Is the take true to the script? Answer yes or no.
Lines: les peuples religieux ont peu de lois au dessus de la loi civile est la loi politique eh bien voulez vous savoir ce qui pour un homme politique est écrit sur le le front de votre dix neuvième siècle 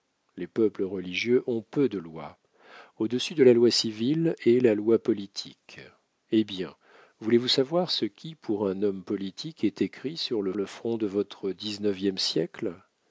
yes